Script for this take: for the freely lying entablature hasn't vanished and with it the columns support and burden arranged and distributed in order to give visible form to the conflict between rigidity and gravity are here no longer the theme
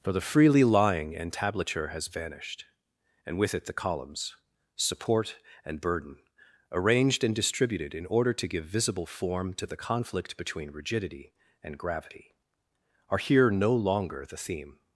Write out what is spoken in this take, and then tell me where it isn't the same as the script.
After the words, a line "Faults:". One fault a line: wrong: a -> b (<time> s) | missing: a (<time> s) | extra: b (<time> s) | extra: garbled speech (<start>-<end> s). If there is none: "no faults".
for the freely lying entablature has vanished and with it the columns support and burden arranged and distributed in order to give visible form to the conflict between rigidity and gravity are here no longer the theme
Faults:
wrong: hasn't -> has (1.9 s)